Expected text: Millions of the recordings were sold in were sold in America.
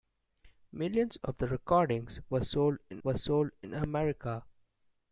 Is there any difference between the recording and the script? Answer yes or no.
no